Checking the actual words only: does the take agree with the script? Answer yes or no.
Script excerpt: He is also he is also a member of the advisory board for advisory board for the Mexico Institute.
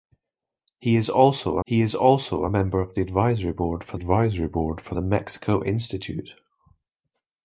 yes